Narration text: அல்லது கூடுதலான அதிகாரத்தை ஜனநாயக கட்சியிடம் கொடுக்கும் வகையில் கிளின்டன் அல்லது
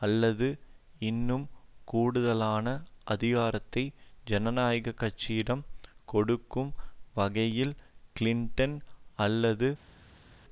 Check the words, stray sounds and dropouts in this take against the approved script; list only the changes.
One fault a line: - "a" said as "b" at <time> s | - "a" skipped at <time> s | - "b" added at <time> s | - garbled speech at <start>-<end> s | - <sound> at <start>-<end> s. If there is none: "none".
- "இன்னும்" added at 1.0 s